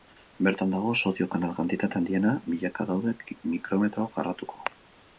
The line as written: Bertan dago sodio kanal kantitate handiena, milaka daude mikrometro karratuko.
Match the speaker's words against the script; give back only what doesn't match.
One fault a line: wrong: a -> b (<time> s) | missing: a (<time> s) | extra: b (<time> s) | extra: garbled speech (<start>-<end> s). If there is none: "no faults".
no faults